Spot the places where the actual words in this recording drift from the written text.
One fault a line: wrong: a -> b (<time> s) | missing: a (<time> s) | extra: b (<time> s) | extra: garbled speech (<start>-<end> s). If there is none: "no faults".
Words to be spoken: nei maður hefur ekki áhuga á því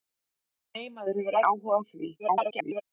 missing: ekki (1.4 s)
extra: garbled speech (2.2-2.8 s)